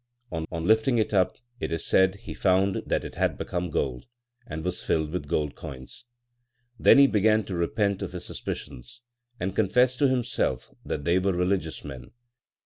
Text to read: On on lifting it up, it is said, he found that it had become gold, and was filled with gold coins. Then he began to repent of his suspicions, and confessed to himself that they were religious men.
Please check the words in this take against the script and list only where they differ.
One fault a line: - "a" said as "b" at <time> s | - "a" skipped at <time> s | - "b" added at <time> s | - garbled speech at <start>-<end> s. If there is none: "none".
none